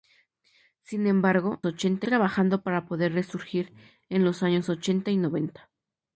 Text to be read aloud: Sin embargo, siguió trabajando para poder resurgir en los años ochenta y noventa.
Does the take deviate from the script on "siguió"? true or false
true